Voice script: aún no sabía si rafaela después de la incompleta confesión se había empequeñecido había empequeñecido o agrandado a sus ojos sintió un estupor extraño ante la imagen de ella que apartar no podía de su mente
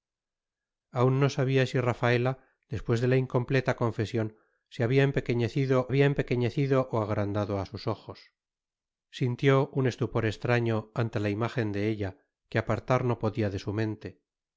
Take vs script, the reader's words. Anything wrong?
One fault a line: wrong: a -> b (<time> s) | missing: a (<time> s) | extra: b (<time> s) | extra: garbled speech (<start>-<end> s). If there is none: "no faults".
no faults